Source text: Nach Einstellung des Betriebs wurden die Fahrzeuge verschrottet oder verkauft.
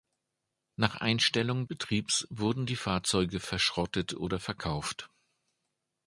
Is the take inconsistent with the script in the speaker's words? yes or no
yes